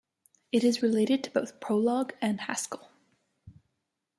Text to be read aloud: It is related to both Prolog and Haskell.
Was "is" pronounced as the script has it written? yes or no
yes